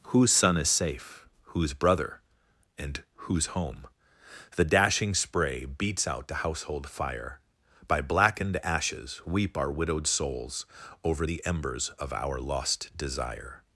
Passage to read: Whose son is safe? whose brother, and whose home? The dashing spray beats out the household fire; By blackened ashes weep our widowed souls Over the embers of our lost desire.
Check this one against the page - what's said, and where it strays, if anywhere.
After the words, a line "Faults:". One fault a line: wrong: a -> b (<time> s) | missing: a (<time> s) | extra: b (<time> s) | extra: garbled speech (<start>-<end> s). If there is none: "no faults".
Whose son is safe? whose brother, and whose home? The dashing spray beats out the household fire; By blackened ashes weep our widowed souls Over the embers of our lost desire.
Faults:
no faults